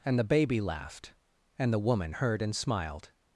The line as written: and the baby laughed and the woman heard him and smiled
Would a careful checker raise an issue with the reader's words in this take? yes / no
yes